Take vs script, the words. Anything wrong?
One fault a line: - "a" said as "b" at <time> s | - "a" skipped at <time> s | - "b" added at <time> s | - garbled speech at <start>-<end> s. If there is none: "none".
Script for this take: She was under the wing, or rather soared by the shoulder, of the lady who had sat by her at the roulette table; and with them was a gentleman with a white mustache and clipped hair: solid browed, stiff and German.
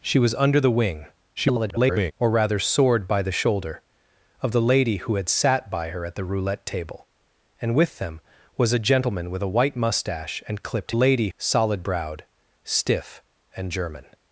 - garbled speech at 1.4-2.1 s
- "hair" said as "lady" at 10.9 s